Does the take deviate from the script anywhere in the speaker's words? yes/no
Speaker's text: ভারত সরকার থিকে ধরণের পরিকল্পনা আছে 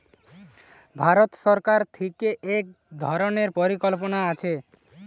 yes